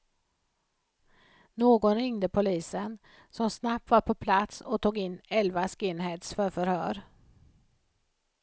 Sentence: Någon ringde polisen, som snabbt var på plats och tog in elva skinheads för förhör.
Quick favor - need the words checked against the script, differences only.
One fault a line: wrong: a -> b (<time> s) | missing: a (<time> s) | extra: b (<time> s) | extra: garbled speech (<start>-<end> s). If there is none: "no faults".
no faults